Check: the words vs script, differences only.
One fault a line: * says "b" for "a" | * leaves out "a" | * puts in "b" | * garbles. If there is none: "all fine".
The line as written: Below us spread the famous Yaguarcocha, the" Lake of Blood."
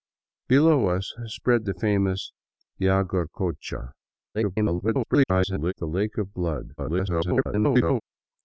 * garbles
* garbles